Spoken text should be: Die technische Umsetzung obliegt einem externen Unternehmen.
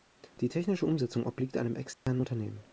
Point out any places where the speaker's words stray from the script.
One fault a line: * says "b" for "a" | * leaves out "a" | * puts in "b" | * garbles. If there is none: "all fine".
all fine